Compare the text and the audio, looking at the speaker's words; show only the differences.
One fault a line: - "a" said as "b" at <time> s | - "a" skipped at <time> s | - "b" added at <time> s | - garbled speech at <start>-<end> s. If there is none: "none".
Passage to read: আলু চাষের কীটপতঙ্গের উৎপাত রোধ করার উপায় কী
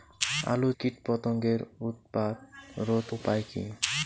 - "চাষের" skipped at 0.7 s
- "করার" skipped at 3.1 s